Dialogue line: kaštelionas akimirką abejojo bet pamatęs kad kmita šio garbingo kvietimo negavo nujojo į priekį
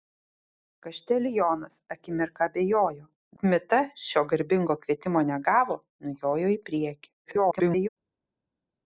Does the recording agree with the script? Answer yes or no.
no